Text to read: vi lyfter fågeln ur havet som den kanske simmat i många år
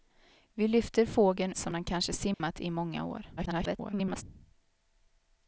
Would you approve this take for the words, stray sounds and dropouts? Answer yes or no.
no